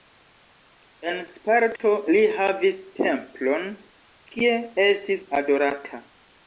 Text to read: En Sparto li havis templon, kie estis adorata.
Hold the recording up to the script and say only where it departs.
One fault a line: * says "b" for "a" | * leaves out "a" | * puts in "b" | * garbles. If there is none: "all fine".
all fine